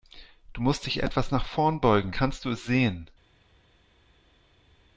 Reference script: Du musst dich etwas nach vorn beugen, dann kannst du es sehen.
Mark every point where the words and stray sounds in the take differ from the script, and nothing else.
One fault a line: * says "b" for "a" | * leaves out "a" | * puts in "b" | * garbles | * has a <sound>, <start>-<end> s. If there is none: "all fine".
* leaves out "dann"